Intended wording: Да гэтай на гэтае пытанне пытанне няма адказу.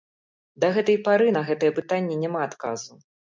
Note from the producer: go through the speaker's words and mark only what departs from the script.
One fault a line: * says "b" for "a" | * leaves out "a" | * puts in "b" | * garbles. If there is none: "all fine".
* puts in "пары"
* leaves out "пытанне"